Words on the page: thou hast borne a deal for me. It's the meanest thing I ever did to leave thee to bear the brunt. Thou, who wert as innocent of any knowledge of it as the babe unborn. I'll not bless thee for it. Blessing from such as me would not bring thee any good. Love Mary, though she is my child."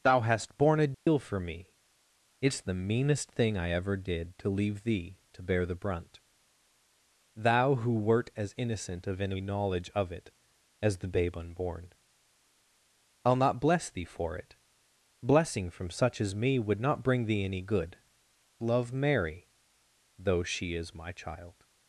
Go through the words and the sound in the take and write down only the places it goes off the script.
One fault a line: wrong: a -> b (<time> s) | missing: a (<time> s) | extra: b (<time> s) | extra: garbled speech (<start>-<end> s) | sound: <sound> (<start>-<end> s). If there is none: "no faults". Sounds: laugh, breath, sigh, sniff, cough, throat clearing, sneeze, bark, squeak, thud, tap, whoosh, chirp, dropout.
sound: dropout (0.9-1.1 s)